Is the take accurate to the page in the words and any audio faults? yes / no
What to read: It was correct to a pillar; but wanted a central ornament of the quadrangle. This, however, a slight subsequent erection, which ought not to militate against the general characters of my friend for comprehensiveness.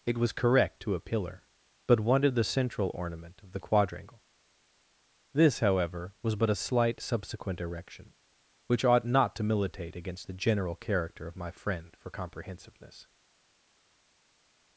no